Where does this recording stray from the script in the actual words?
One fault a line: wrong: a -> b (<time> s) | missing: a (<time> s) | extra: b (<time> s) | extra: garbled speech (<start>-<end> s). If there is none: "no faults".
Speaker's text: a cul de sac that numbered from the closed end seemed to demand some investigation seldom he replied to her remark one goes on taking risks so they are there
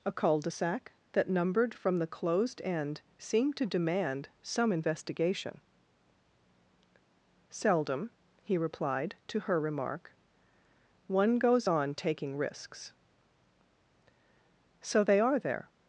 no faults